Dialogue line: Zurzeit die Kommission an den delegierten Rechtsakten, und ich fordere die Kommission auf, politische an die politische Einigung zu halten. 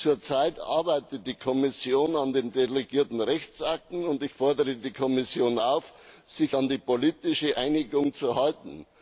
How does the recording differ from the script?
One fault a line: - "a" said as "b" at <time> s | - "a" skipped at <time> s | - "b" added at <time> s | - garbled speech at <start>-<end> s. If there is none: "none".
- "arbeitet" added at 0.6 s
- "politische" said as "sich" at 6.2 s